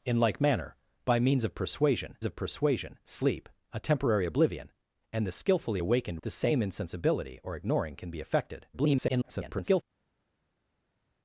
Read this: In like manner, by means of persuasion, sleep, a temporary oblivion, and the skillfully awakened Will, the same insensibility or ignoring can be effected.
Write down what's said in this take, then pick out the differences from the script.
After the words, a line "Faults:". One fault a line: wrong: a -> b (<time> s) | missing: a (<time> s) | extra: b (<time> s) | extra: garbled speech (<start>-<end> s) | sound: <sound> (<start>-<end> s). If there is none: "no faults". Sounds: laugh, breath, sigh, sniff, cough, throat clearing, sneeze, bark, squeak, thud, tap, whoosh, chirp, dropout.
In like manner, by means of persuasion of persuasion, sleep, a temporary oblivion, and the skillfully awakened The same insensibility or ignoring can be effected. [garbled]
Faults:
extra: of persuasion (2.2 s)
missing: Will (6.2 s)
extra: garbled speech (8.7-9.8 s)